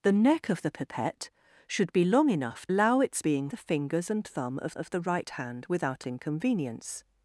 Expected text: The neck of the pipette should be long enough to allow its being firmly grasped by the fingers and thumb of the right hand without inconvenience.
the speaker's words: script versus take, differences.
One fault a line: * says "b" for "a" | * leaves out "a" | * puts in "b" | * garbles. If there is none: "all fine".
* leaves out "to"
* leaves out "firmly grasped by"
* puts in "of"